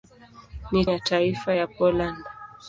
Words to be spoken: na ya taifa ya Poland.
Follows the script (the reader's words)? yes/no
yes